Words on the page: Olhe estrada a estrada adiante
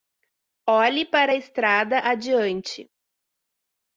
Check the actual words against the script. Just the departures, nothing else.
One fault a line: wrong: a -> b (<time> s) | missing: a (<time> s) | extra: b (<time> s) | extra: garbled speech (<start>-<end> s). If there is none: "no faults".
wrong: estrada -> para (1.1 s)